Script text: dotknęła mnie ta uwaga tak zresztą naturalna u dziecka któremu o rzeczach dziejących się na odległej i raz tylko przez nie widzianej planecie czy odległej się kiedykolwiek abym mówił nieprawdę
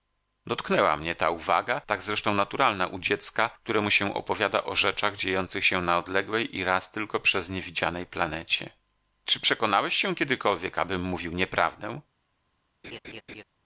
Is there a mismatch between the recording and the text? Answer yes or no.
yes